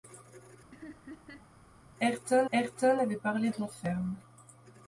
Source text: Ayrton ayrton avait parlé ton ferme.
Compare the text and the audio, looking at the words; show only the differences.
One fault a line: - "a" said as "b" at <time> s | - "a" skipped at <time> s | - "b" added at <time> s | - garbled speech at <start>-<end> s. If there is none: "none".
none